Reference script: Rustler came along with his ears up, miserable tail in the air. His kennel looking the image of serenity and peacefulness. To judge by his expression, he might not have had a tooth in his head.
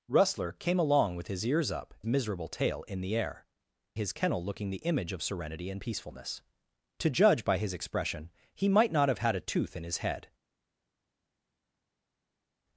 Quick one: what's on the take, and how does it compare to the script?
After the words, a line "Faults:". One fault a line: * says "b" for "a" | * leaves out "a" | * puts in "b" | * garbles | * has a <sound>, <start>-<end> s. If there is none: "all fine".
Rustler came along with his ears up, miserable tail in the air. His kennel looking the image of serenity and peacefulness. To judge by his expression, he might not have had a tooth in his head.
Faults:
all fine